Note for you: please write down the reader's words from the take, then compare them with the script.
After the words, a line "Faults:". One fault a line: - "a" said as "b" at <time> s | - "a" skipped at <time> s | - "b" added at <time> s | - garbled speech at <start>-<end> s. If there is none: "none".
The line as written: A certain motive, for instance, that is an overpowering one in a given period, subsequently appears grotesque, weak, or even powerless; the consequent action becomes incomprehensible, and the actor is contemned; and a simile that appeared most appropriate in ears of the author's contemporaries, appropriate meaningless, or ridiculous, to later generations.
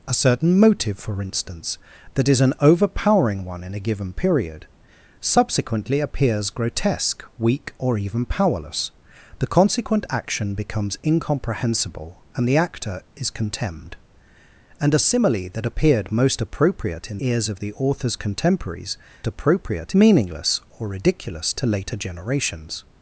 A certain motive, for instance, that is an overpowering one in a given period, subsequently appears grotesque, weak, or even powerless; the consequent action becomes incomprehensible, and the actor is contemned; and a simile that appeared most appropriate in ears of the author's contemporaries, appropriate meaningless, or ridiculous, to later generations.
Faults:
none